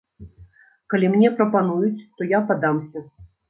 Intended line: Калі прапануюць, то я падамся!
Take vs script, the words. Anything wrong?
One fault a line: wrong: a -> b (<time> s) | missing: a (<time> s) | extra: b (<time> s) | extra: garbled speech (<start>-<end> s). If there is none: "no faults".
extra: мне (1.2 s)